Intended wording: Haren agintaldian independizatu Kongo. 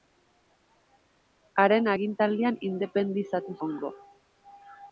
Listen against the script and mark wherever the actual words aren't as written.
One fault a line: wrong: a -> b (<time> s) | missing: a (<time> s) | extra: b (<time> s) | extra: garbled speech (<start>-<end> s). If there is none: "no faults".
no faults